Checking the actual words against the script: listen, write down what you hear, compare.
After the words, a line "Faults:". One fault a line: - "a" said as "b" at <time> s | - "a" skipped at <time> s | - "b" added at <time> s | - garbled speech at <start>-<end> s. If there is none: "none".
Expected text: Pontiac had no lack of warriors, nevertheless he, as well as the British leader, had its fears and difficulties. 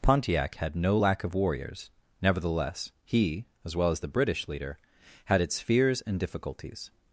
Pontiac had no lack of warriors, nevertheless he, as well as the British leader, had its fears and difficulties.
Faults:
none